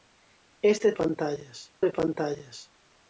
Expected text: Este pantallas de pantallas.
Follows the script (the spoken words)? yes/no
yes